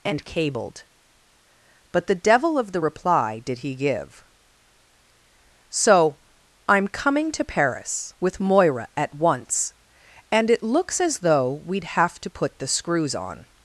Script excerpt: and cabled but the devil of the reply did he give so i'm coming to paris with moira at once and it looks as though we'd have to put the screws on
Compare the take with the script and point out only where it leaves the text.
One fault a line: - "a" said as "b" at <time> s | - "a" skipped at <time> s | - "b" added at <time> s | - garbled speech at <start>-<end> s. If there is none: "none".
none